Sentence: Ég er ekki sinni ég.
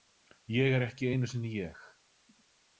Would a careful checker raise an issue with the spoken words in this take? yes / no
yes